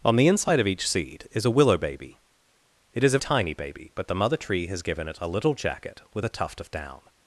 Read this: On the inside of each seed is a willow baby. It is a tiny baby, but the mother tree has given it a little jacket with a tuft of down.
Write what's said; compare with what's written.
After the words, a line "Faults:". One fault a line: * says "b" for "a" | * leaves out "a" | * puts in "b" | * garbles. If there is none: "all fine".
On the inside of each seed is a willow baby. It is a tiny baby, but the mother tree has given it a little jacket with a tuft of down.
Faults:
all fine